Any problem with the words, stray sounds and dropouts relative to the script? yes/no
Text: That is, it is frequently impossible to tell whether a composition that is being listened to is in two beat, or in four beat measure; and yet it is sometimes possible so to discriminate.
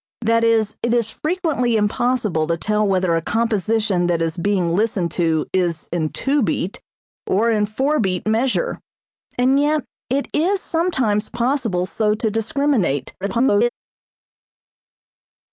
yes